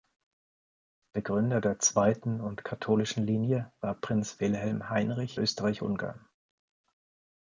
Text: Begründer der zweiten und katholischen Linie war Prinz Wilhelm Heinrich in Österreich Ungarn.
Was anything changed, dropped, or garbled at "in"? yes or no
yes